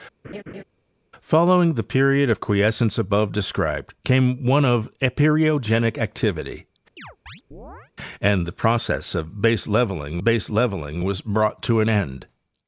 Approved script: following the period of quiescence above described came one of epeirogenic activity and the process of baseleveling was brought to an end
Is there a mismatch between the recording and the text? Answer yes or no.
yes